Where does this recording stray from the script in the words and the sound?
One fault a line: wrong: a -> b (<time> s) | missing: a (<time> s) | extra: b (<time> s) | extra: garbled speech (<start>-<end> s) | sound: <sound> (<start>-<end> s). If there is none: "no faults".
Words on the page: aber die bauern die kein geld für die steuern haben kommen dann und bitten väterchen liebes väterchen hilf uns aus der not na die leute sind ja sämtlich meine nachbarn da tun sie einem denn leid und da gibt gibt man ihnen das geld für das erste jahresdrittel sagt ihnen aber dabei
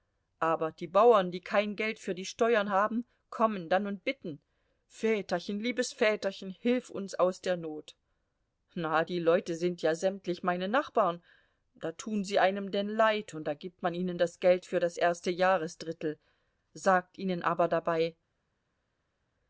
missing: gibt (13.8 s)